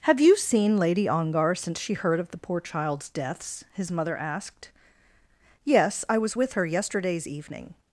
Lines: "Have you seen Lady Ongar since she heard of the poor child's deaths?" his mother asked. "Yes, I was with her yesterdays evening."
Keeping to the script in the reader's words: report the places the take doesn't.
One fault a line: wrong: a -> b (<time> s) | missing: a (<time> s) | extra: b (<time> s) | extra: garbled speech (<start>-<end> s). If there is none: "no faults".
no faults